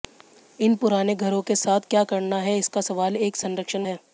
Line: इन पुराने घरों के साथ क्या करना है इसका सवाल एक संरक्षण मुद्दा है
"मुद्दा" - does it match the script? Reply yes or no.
no